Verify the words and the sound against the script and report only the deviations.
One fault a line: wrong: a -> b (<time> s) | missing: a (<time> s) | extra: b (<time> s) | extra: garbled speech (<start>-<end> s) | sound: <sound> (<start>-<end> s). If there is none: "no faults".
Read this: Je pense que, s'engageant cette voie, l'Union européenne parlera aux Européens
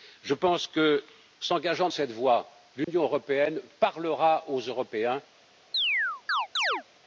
sound: dropout (2.8-2.9 s)
sound: chirp (5.7-6.8 s)